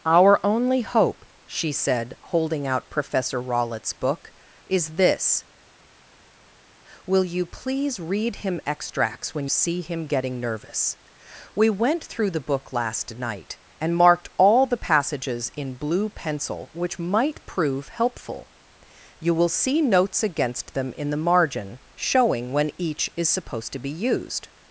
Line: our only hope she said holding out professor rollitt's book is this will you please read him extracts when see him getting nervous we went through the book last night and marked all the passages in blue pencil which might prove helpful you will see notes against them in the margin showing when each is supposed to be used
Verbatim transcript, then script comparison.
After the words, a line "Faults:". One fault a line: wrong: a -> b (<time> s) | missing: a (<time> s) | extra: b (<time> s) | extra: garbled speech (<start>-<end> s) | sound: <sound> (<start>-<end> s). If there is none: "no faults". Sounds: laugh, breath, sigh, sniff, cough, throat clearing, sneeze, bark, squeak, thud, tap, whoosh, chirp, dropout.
our only hope she said holding out professor rollitt's book is this will you please read him extracts when see him getting nervous we went through the book last night and marked all the passages in blue pencil which might prove helpful you will see notes against them in the margin showing when each is supposed to be used
Faults:
no faults